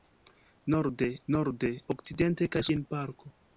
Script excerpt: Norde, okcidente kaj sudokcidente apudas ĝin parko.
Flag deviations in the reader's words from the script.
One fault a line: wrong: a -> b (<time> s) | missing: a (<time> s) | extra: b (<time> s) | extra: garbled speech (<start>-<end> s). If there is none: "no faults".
extra: norde (1.3 s)
missing: sudokcidente apudas (2.6 s)